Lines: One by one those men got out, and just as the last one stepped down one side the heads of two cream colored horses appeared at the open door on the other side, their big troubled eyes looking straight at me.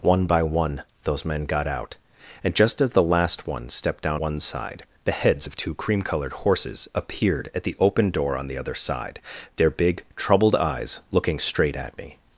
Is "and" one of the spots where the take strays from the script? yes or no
no